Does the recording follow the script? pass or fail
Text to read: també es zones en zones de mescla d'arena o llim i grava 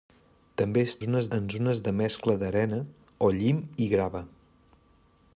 pass